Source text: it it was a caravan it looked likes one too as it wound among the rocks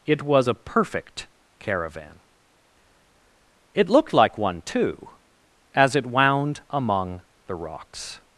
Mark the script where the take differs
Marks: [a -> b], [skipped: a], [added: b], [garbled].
it [skipped: it] was a [added: perfect] caravan it looked [likes -> like] one too as it wound among the rocks